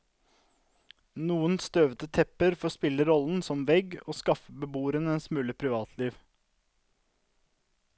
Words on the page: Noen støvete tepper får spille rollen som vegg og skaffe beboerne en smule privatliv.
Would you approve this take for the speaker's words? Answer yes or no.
yes